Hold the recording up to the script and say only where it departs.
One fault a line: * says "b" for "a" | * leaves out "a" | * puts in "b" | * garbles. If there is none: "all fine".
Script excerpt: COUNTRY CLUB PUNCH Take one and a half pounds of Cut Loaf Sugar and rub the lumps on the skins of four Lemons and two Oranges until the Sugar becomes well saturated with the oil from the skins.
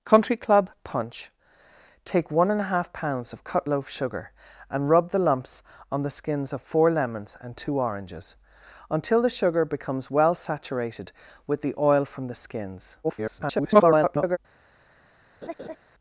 * garbles